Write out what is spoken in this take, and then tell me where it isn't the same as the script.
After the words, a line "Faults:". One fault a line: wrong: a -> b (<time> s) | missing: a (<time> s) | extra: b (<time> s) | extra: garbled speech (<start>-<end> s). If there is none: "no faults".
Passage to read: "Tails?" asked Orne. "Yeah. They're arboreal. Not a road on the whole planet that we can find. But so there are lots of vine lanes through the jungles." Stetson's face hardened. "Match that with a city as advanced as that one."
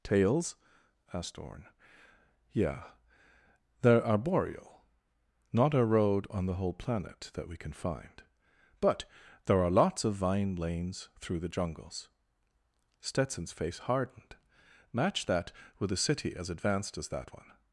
"Tails?" asked Orne. "Yeah. They're arboreal. Not a road on the whole planet that we can find. But there are lots of vine lanes through the jungles." Stetson's face hardened. "Match that with a city as advanced as that one."
Faults:
missing: so (9.1 s)